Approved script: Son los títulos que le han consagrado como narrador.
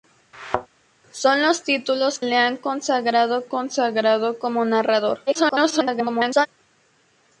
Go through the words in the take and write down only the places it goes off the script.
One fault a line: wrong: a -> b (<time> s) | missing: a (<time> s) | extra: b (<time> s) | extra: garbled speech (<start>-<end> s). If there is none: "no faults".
missing: que (2.2 s)
extra: consagrado (3.4 s)
extra: garbled speech (5.3-6.5 s)